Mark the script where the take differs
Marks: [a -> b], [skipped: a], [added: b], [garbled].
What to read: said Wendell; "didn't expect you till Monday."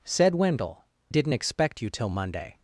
said Wendell; "didn't expect you till Monday."